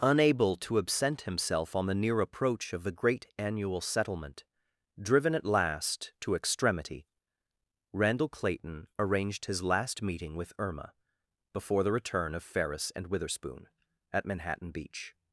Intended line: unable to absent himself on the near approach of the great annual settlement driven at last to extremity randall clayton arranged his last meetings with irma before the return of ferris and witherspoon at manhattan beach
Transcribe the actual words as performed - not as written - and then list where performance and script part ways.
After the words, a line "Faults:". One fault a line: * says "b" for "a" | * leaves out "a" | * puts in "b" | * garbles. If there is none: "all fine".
unable to absent himself on the near approach of the great annual settlement driven at last to extremity randall clayton arranged his last meeting with irma before the return of ferris and witherspoon at manhattan beach
Faults:
* says "meeting" for "meetings"